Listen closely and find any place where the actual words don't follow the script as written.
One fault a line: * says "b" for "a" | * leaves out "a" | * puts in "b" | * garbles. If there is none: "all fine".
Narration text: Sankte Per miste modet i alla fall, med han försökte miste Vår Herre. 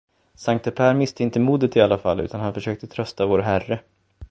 * puts in "inte"
* says "utan" for "med"
* says "trösta" for "miste"